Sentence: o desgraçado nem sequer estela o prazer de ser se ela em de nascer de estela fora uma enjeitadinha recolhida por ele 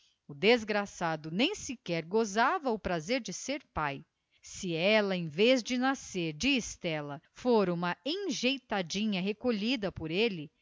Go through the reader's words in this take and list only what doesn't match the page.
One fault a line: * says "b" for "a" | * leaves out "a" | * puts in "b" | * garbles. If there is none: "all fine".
* says "gozava" for "estela"
* puts in "pai"
* puts in "vez"